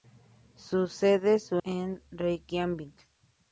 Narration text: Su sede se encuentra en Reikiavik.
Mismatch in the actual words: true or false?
true